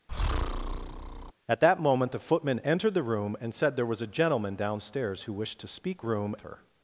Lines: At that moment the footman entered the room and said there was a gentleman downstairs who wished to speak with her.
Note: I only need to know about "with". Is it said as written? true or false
false